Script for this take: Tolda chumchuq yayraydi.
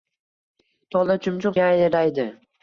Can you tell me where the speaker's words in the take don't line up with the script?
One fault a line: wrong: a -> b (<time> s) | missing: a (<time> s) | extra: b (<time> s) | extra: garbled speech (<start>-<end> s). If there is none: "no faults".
no faults